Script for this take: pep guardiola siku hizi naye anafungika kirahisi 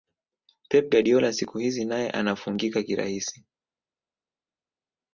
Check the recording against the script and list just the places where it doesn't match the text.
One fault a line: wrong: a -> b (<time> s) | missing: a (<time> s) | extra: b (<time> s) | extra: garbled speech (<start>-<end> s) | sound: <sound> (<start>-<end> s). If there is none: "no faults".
no faults